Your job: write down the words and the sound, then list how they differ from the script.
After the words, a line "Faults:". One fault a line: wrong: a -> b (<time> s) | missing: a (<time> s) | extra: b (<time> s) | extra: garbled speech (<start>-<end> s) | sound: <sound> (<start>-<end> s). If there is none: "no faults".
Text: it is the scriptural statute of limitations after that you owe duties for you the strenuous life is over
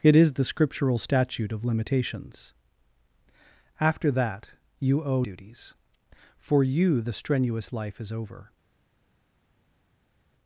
it is the scriptural statute of limitations after that you owe duties for you the strenuous life is over
Faults:
no faults